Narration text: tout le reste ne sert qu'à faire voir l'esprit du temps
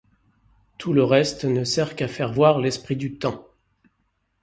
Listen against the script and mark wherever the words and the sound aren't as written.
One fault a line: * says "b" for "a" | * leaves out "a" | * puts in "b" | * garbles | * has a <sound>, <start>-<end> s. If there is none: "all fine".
all fine